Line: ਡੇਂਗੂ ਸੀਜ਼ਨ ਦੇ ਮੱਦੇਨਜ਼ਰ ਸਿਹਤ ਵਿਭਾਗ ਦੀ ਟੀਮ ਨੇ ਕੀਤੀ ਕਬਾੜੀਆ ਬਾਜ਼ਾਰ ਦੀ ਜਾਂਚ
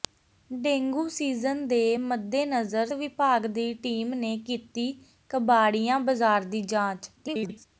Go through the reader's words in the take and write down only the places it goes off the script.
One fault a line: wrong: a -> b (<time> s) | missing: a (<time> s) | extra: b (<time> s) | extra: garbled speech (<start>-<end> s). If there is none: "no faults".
missing: ਸਿਹਤ (2.9 s)
extra: garbled speech (7.2-7.6 s)